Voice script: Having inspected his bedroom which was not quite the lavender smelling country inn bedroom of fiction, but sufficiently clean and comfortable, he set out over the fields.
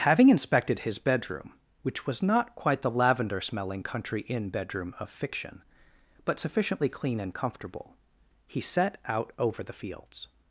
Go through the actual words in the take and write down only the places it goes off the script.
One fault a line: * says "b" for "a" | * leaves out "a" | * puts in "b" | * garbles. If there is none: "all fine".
all fine